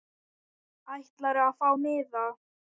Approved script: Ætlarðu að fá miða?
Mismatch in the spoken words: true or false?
false